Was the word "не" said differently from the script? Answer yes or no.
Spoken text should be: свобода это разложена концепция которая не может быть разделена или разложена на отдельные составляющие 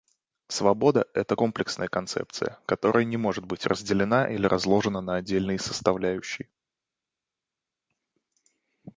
no